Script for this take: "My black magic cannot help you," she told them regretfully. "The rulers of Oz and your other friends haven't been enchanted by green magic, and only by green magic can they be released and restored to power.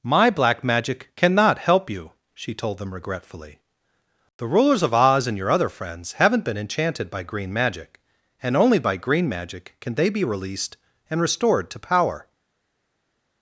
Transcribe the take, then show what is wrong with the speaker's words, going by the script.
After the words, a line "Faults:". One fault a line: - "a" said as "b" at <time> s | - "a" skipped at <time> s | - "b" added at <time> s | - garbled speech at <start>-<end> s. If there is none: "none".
"My black magic cannot help you," she told them regretfully. "The rulers of Oz and your other friends haven't been enchanted by green magic, and only by green magic can they be released and restored to power.
Faults:
none